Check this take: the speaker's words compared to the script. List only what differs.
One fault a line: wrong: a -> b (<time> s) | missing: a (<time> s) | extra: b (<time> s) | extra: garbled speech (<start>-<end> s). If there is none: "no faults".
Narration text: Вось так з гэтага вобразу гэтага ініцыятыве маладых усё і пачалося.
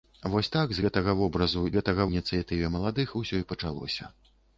no faults